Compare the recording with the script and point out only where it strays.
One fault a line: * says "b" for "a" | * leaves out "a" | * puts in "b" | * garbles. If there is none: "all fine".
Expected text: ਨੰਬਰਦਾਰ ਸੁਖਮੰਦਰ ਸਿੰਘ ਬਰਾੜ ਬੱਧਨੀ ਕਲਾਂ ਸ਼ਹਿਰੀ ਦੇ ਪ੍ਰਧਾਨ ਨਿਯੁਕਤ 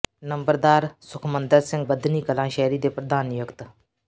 * leaves out "ਬਰਾੜ"